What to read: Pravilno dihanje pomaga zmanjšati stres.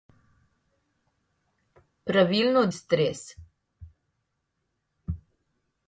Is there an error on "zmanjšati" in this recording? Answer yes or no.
yes